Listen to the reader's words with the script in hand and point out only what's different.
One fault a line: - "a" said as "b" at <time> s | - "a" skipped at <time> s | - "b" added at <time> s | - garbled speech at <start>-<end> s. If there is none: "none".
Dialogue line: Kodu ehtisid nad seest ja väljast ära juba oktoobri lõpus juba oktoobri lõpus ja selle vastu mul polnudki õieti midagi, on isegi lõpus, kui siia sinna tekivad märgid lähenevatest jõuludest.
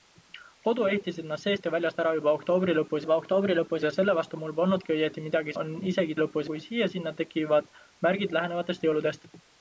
none